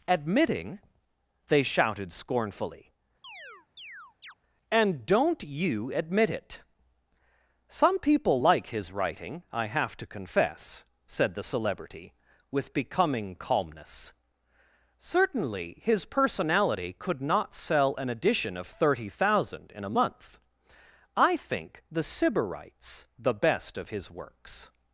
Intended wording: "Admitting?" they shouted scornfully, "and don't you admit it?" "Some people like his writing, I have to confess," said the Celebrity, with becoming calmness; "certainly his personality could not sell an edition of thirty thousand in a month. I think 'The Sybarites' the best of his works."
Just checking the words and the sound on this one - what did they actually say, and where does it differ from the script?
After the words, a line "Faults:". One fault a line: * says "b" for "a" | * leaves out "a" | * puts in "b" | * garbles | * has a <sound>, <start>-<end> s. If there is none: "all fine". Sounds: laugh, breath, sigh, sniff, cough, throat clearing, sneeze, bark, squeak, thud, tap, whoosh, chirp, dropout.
"Admitting?" they shouted scornfully, "and don't you admit it?" "Some people like his writing, I have to confess," said the Celebrity, with becoming calmness; "certainly his personality could not sell an edition of thirty thousand in a month. I think 'The Sybarites' the best of his works."
Faults:
* has a chirp, 3.2-4.3 s